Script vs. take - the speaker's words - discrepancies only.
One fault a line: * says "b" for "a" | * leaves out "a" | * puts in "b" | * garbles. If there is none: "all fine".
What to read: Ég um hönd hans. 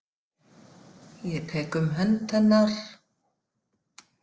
* puts in "tek"
* says "hennar" for "hans"